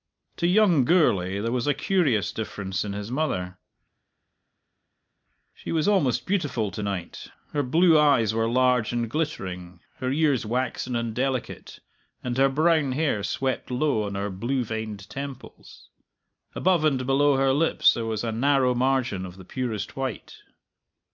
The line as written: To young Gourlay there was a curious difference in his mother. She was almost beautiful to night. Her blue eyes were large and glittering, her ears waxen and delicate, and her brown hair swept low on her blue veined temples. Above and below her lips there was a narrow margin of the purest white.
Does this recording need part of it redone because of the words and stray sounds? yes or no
no